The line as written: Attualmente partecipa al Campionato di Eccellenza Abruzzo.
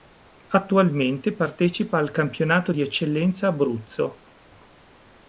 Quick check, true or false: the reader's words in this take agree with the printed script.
true